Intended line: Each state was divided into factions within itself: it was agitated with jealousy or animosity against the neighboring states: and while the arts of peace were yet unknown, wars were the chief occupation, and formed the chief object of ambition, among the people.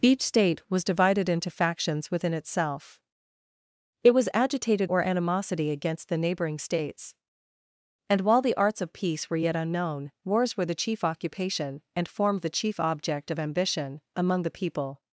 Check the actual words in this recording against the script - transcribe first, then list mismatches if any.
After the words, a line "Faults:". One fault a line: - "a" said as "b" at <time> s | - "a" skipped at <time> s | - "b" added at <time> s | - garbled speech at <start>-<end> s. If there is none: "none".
Each state was divided into factions within itself: it was agitated or animosity against the neighboring states: and while the arts of peace were yet unknown, wars were the chief occupation, and formed the chief object of ambition, among the people.
Faults:
- "with jealousy" skipped at 4.9 s